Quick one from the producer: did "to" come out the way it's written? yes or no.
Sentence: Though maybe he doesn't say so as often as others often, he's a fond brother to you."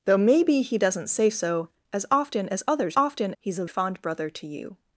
yes